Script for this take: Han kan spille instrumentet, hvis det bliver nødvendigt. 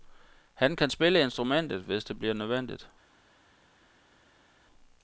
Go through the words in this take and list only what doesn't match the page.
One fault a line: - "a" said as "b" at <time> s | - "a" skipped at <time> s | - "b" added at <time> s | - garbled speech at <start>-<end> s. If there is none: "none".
none